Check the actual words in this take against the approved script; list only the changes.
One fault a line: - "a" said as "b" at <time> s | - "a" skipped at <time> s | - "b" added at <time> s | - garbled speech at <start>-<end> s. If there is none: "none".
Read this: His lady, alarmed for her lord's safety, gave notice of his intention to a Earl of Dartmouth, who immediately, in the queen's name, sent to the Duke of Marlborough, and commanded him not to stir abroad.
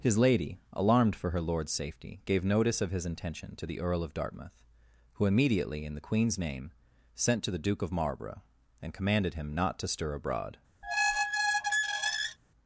- "a" said as "the" at 3.7 s